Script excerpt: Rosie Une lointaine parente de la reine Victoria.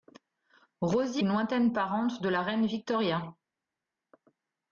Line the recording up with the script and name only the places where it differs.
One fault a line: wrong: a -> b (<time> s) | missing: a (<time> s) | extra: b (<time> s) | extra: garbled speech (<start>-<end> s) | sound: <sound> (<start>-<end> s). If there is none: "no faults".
no faults